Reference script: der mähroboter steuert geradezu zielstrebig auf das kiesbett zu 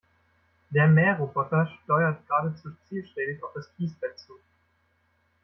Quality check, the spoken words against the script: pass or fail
pass